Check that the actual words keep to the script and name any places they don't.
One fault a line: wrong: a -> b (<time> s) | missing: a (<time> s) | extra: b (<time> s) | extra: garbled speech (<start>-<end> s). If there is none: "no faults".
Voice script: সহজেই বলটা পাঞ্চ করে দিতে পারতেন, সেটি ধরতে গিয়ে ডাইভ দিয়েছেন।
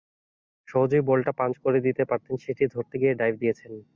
no faults